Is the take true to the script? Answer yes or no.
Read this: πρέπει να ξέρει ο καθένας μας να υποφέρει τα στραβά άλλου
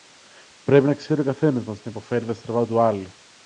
no